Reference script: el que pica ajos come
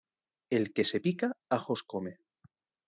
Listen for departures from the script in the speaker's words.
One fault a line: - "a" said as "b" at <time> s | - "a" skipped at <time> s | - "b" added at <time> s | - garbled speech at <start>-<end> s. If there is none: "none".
- "se" added at 0.8 s